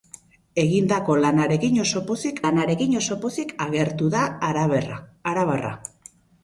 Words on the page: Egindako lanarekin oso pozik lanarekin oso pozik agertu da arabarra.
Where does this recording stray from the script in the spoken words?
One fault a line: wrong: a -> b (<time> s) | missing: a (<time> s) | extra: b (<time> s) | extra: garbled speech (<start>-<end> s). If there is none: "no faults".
no faults